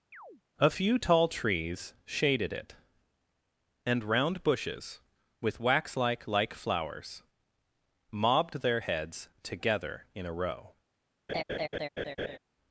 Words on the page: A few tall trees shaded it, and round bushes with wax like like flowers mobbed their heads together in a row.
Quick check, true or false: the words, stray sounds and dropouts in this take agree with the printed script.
false